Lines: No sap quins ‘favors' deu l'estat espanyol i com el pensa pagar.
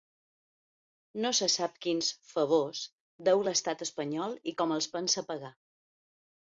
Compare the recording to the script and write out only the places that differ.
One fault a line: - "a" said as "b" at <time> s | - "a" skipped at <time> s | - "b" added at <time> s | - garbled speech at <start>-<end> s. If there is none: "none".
- "se" added at 1.4 s
- "el" said as "els" at 4.8 s